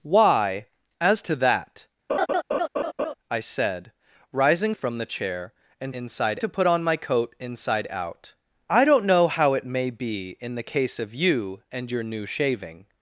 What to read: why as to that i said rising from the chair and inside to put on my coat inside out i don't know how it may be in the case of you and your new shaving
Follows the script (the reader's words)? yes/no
yes